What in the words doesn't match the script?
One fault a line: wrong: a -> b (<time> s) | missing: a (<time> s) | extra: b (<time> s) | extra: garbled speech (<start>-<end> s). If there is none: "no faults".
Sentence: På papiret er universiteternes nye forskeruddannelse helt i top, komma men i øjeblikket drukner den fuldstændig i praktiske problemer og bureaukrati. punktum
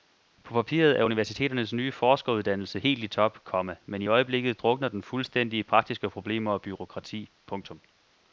no faults